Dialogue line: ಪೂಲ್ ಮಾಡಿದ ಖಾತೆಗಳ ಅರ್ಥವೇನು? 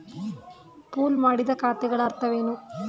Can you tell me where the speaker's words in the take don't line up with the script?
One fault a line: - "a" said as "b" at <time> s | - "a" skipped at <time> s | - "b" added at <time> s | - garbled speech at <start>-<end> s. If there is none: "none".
none